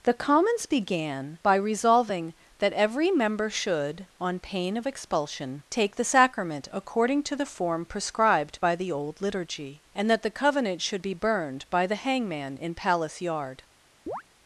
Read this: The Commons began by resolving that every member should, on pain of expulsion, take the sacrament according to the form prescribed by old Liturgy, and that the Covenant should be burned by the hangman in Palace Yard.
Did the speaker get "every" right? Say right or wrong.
right